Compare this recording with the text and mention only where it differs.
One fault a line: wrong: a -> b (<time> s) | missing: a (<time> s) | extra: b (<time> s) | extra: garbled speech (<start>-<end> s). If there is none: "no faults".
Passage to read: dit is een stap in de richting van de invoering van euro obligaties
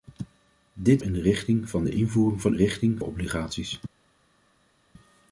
missing: is een stap (1.0 s)
wrong: euro -> richting (2.5 s)